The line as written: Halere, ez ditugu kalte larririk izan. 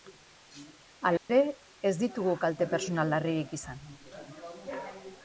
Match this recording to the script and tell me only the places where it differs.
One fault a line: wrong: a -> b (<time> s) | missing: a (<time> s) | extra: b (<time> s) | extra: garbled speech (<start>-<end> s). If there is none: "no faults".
extra: pertsonal (2.7 s)